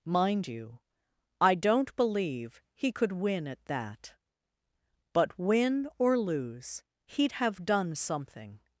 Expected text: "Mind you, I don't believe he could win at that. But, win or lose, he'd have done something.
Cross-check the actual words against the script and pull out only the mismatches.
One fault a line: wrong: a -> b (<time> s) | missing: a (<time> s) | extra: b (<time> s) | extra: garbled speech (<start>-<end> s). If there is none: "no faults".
no faults